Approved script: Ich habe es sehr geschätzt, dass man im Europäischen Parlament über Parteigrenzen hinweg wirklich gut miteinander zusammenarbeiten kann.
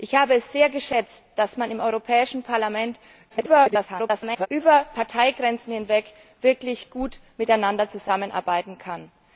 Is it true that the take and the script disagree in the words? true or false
true